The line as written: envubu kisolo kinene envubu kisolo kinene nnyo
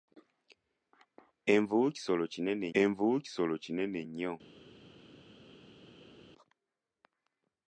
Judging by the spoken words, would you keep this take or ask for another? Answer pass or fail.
pass